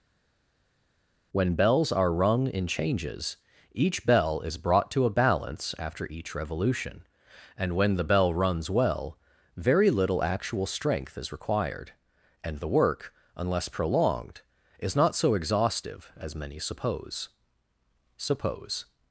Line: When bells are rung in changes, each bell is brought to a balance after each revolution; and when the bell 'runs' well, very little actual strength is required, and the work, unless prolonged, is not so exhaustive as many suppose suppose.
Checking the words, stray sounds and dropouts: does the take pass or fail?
pass